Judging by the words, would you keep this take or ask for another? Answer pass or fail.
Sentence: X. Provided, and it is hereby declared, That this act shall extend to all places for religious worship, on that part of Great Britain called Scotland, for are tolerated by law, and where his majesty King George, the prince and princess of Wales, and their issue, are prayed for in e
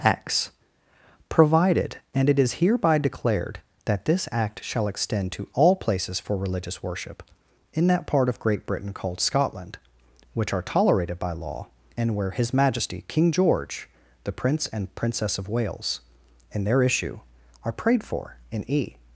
fail